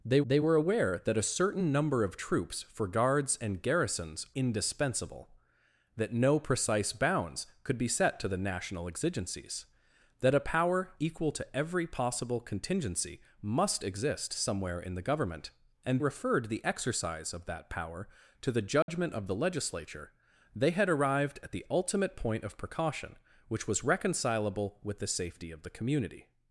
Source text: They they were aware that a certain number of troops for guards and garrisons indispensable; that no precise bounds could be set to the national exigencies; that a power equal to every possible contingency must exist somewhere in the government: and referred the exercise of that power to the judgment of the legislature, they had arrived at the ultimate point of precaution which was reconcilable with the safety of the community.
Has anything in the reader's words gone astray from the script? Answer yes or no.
no